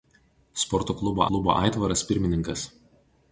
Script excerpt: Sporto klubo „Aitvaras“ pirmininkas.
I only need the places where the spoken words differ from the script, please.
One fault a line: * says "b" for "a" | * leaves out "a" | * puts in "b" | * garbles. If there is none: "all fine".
* puts in "klubo"